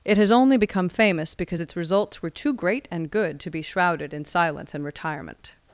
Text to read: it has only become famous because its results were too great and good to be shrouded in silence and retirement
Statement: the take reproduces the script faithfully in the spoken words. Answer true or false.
true